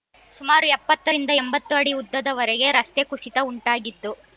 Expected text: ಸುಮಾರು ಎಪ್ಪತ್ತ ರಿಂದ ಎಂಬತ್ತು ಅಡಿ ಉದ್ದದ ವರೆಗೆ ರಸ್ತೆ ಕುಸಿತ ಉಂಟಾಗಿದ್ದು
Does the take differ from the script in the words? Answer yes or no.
no